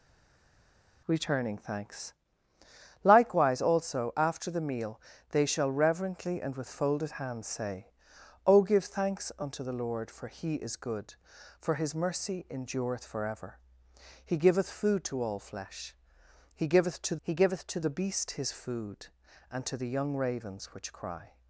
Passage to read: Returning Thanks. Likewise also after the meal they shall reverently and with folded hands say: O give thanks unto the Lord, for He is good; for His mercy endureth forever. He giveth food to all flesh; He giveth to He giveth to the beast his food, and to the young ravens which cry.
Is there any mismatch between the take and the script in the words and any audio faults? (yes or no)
no